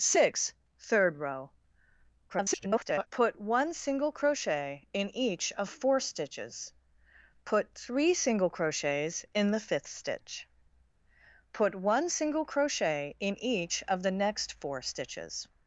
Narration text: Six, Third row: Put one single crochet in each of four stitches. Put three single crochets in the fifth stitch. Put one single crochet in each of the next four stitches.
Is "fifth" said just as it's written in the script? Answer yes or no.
yes